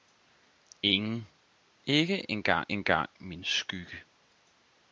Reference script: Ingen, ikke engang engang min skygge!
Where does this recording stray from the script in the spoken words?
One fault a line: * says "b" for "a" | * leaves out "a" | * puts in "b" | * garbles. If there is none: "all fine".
all fine